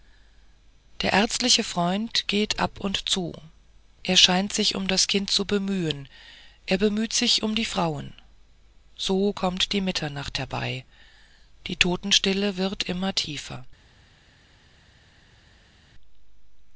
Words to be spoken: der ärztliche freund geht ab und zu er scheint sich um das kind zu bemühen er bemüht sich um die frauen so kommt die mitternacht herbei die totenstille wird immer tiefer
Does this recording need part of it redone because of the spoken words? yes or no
no